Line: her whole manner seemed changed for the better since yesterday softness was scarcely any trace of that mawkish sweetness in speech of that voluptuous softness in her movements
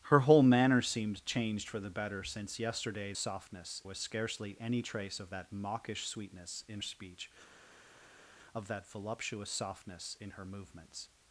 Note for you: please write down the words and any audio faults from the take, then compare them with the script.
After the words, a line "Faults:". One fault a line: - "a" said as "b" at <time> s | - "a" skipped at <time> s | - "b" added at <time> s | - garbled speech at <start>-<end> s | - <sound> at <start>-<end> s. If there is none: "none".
her whole manner seemed changed for the better since yesterday softness was scarcely any trace of that mawkish sweetness in speech of that voluptuous softness in her movements
Faults:
none